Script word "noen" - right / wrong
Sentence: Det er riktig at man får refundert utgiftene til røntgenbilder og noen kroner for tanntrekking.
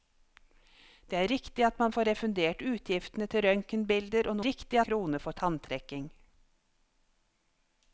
wrong